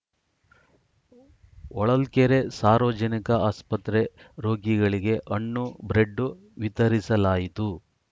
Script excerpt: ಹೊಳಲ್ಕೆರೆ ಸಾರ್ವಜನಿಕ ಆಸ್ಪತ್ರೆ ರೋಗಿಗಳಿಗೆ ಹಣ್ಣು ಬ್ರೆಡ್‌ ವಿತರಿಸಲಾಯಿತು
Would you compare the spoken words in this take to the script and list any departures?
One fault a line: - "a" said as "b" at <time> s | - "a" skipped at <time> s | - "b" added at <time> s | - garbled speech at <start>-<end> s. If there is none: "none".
none